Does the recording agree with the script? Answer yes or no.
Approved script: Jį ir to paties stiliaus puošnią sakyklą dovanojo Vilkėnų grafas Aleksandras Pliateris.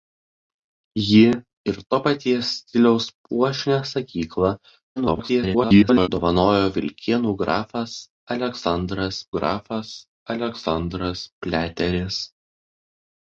no